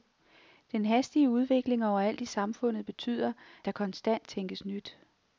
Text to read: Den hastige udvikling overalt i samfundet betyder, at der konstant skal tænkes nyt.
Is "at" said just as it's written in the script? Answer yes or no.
no